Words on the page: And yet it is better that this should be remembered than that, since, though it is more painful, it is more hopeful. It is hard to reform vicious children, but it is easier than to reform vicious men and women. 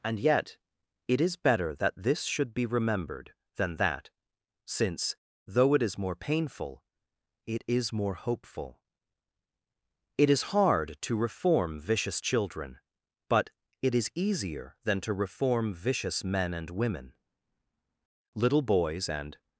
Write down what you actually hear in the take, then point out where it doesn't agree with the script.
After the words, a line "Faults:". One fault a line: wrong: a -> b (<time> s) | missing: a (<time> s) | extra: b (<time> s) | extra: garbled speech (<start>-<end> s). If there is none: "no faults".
And yet it is better that this should be remembered than that, since, though it is more painful, it is more hopeful. It is hard to reform vicious children, but it is easier than to reform vicious men and women. Little boys and
Faults:
extra: Little boys and (18.3 s)